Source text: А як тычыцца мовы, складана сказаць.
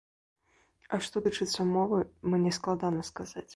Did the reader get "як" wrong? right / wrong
wrong